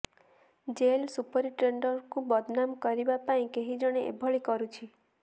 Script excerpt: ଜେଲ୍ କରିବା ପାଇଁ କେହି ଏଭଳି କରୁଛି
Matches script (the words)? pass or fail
fail